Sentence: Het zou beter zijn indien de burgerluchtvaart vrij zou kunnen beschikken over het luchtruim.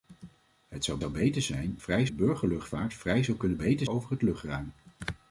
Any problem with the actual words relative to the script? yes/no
yes